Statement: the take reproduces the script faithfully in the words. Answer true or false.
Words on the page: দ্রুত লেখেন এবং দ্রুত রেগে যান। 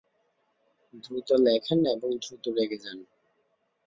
true